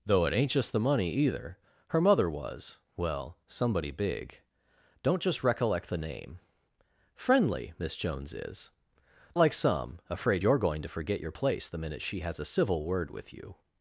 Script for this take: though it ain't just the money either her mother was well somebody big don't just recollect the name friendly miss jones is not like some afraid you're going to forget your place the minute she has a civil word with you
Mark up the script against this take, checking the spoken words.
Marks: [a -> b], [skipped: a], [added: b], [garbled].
though it ain't just the money either her mother was well somebody big don't just recollect the name friendly miss jones is [skipped: not] like some afraid you're going to forget your place the minute she has a civil word with you